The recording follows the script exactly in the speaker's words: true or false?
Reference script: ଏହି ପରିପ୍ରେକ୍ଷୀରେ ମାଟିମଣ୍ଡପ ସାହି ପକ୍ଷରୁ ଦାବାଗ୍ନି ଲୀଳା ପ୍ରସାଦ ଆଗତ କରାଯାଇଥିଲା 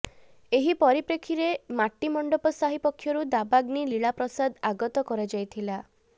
true